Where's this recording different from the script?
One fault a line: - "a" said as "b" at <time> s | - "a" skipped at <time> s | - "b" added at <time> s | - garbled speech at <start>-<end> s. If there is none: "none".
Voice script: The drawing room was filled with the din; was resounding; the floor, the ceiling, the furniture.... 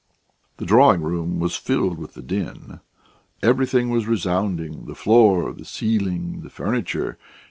- "everything" added at 3.4 s